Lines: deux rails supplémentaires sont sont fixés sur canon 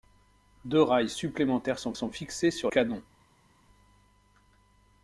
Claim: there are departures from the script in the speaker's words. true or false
false